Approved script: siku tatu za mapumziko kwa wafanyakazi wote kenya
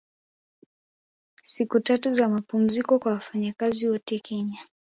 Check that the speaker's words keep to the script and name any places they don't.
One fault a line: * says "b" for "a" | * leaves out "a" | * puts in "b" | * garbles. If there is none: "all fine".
all fine